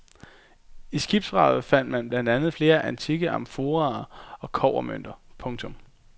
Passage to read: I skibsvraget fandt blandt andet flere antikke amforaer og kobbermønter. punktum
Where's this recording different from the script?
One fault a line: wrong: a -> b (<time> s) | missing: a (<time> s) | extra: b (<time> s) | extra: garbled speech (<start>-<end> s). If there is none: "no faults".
extra: man (1.9 s)